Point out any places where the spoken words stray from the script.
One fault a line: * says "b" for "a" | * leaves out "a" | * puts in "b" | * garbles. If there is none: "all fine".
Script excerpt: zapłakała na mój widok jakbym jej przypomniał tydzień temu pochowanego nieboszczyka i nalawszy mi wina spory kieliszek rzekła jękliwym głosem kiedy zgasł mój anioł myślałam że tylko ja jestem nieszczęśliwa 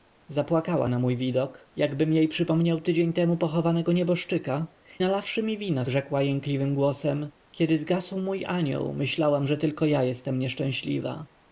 * leaves out "i"
* leaves out "spory kieliszek"